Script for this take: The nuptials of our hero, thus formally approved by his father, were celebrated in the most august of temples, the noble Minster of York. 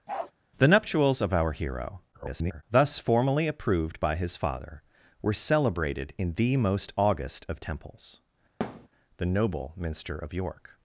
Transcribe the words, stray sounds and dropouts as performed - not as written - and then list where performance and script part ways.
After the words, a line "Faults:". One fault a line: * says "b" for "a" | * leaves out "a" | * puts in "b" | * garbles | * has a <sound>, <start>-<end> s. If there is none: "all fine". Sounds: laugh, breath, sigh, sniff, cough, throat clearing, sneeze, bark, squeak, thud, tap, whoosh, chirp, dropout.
The nuptials of our hero, [garbled] thus formally approved by his father, were celebrated in the most august of temples, the noble Minster of York.
Faults:
* has a bark, 0.1-0.3 s
* garbles
* has a thud, 8.6-8.9 s